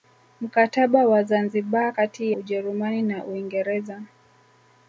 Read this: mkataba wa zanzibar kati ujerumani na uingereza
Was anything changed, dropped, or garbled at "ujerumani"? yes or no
no